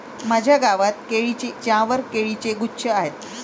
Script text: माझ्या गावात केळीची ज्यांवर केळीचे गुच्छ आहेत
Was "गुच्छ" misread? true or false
false